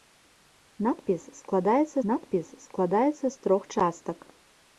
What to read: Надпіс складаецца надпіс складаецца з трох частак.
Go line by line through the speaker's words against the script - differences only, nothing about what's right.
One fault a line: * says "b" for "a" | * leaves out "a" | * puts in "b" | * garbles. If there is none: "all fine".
all fine